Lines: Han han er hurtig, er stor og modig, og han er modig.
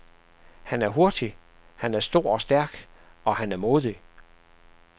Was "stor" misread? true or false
false